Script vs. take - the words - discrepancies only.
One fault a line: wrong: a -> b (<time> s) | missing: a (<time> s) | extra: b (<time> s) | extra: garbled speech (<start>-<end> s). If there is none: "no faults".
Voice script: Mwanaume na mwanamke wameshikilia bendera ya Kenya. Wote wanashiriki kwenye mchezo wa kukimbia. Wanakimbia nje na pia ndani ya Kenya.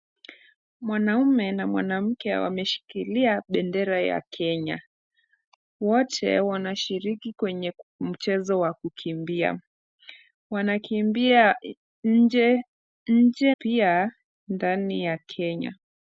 missing: na (13.6 s)